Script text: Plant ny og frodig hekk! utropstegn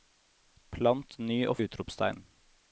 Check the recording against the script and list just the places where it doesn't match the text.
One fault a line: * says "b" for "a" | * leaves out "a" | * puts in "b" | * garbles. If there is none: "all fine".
* leaves out "frodig hekk"